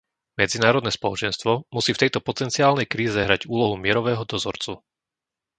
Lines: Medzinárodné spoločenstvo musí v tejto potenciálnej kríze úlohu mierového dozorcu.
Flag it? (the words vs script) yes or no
yes